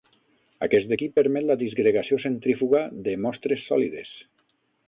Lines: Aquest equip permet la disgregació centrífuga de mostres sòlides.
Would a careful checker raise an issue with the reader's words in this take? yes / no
no